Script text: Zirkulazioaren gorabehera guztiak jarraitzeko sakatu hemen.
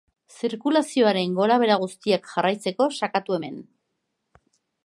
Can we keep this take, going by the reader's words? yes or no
yes